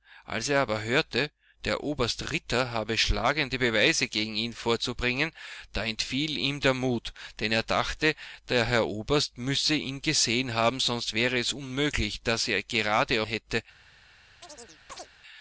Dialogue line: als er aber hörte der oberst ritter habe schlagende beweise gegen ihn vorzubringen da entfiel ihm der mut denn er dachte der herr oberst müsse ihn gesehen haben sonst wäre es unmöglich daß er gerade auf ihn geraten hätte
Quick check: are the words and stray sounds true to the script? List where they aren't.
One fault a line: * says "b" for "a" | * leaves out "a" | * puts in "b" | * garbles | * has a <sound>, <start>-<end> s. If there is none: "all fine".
* leaves out "auf ihn geraten"
* has a chirp, 14.4-15.1 s